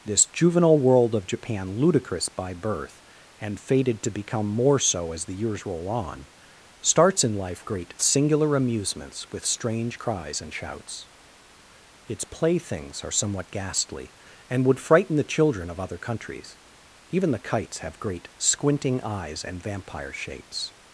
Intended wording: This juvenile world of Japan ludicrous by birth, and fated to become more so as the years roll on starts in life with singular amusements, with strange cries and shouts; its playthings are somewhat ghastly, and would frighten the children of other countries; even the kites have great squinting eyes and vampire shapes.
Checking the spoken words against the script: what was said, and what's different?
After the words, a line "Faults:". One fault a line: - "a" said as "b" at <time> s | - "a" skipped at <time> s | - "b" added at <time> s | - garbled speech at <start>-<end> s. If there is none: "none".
This juvenile world of Japan ludicrous by birth, and fated to become more so as the years roll on starts in life great singular amusements, with strange cries and shouts; its playthings are somewhat ghastly, and would frighten the children of other countries; even the kites have great squinting eyes and vampire shapes.
Faults:
- "with" said as "great" at 7.6 s